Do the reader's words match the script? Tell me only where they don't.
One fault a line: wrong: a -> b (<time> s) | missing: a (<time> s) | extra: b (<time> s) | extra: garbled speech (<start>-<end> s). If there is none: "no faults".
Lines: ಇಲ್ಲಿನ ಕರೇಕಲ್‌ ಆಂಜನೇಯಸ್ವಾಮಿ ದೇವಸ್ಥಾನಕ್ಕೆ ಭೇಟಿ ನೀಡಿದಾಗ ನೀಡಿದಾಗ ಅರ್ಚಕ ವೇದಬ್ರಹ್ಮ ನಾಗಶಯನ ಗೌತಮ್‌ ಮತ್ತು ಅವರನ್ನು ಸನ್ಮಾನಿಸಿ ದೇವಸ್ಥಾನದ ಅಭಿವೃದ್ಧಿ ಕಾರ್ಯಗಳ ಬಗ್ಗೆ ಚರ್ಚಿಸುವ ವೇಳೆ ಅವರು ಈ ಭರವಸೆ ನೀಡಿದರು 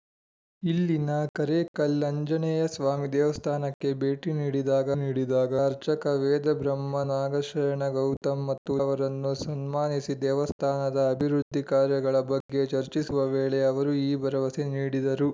no faults